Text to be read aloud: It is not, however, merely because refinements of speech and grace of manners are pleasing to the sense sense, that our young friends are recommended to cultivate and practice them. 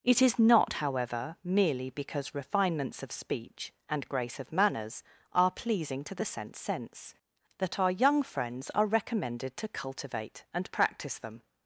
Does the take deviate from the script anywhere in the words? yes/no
no